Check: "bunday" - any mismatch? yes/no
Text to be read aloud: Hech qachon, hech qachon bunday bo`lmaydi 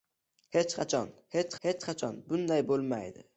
no